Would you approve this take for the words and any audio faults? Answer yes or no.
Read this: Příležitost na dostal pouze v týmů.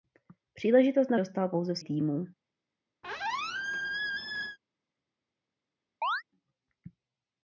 no